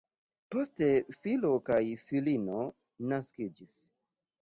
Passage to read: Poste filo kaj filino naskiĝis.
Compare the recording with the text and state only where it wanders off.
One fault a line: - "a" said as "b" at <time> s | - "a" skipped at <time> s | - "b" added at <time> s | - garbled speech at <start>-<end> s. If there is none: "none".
none